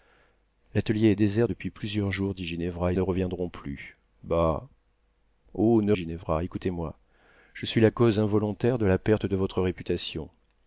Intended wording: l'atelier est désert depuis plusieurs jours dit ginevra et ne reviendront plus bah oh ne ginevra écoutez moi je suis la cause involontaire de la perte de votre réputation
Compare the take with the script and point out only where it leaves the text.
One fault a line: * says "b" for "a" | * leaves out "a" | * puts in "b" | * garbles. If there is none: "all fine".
all fine